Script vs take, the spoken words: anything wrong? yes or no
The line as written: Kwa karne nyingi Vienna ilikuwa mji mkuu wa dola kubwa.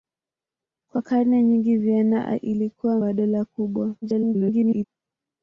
yes